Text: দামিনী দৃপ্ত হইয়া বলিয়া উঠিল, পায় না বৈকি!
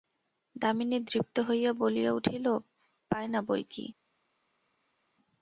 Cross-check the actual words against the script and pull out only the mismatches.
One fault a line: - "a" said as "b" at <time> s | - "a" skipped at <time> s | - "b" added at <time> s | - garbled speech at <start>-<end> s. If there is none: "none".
none